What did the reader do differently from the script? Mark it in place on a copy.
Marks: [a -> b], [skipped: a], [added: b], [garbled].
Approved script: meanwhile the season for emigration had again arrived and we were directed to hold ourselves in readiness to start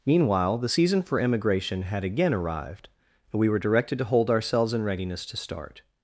meanwhile the season for emigration had again arrived and we were directed to hold ourselves in readiness to start